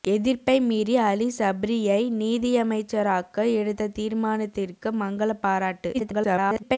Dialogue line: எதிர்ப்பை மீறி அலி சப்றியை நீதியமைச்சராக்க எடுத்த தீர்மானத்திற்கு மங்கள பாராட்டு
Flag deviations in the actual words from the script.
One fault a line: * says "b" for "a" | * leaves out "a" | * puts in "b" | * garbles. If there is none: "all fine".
* garbles